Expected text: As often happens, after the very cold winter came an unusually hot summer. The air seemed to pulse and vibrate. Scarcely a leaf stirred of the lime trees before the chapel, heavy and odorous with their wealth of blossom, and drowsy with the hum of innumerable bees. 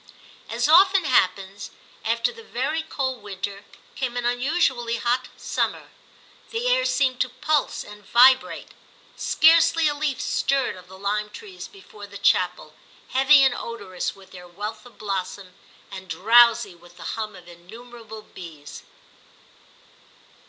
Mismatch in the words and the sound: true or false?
false